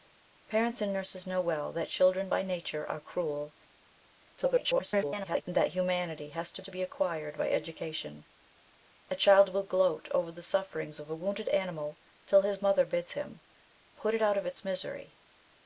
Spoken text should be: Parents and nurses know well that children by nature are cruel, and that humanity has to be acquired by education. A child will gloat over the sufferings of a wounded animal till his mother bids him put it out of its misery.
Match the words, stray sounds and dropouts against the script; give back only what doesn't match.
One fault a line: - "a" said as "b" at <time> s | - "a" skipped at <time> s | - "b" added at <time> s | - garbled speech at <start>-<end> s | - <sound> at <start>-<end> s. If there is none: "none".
- garbled speech at 4.4-5.4 s
- "to" added at 6.6 s